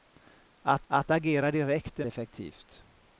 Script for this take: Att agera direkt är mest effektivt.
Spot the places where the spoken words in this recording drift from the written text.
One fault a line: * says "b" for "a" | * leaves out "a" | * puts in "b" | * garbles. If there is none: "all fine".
* puts in "att"
* leaves out "mest"